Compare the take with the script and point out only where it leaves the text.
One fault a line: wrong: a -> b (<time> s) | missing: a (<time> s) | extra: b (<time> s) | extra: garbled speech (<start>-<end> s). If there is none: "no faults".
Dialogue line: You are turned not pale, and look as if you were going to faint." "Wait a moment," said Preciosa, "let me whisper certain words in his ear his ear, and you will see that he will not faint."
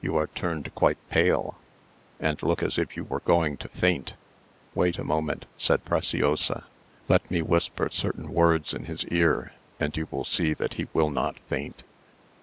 wrong: not -> quite (0.7 s)
missing: his ear (9.5 s)